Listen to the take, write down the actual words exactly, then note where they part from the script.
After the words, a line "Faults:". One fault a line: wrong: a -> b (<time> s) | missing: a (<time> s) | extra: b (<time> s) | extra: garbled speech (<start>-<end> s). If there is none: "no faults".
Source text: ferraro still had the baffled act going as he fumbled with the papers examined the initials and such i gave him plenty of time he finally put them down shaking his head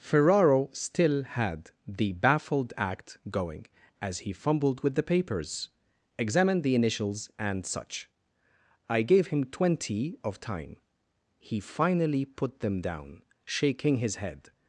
ferraro still had the baffled act going as he fumbled with the papers examined the initials and such i gave him twenty of time he finally put them down shaking his head
Faults:
wrong: plenty -> twenty (9.4 s)